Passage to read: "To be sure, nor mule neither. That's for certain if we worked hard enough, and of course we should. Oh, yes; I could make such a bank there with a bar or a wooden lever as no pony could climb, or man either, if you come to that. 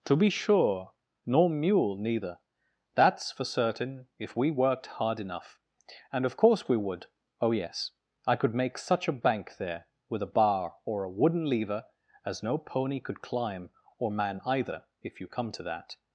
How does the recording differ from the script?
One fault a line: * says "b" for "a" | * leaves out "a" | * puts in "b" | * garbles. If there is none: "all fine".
* says "would" for "should"